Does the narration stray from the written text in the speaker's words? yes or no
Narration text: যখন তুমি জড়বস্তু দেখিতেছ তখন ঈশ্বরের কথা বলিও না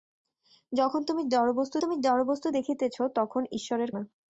yes